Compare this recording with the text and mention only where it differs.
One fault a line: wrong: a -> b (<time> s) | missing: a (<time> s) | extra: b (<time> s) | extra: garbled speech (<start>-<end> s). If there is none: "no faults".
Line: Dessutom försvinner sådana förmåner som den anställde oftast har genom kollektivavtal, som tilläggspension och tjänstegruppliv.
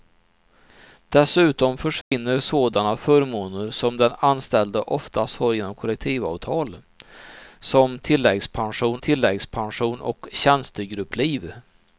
extra: tilläggspension (9.0 s)